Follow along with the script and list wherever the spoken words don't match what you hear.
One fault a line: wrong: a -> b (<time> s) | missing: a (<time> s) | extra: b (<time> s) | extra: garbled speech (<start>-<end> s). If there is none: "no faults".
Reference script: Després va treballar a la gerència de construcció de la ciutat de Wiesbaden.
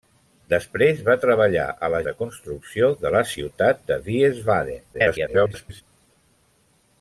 missing: gerència (2.0 s)
extra: garbled speech (4.9-5.8 s)